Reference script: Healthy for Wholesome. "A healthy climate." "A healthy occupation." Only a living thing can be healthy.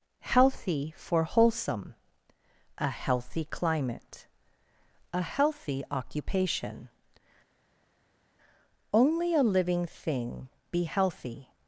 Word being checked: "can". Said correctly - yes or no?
no